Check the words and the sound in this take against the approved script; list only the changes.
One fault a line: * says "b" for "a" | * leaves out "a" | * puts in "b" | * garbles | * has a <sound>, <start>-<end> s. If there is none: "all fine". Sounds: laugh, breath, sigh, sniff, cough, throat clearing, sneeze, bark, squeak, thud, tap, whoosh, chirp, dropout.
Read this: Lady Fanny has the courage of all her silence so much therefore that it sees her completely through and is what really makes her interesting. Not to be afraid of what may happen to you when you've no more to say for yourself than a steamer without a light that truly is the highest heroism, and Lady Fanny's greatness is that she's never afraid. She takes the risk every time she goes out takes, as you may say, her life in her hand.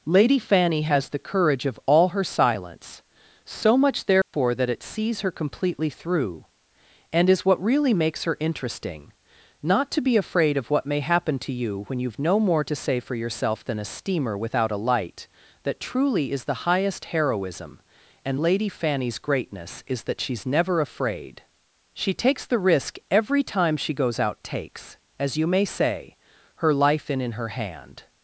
* has a dropout, 4.2-4.3 s
* puts in "in"